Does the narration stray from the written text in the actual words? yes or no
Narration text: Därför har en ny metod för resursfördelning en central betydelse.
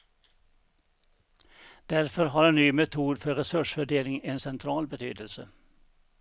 no